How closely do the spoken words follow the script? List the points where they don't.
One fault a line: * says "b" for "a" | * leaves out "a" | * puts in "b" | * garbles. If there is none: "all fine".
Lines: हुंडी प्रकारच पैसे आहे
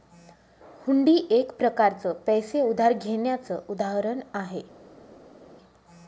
* puts in "एक"
* puts in "उधार घेण्याचं उदाहरण"